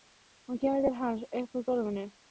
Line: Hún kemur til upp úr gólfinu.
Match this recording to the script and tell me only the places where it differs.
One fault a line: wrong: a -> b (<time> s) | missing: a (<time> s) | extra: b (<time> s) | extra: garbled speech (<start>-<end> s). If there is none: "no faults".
extra: hans (1.0 s)